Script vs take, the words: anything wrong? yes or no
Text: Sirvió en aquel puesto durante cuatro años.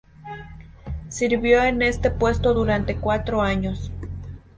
yes